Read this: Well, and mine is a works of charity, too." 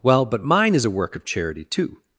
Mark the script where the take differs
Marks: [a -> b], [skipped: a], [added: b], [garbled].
Well, [and -> but] mine is a [works -> work] of charity, too."